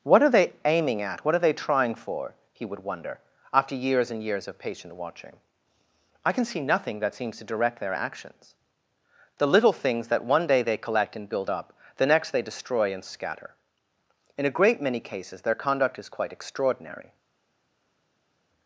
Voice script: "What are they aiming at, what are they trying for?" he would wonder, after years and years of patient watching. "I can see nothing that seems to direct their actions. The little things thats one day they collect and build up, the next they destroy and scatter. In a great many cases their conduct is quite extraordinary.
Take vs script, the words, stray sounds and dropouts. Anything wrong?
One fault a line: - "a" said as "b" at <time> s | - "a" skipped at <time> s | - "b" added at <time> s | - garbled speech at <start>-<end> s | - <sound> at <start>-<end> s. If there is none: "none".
- "thats" said as "that" at 10.1 s